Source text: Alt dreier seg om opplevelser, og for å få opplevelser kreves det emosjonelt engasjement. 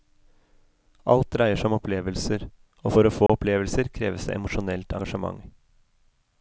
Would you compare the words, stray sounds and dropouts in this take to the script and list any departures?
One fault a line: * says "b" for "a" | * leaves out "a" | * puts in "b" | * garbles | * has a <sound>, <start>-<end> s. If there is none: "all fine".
* has a dropout, 3.3-3.3 s